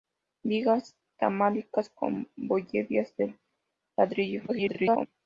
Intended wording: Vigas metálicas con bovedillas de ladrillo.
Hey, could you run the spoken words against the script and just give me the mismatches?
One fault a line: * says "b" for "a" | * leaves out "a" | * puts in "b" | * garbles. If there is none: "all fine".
* garbles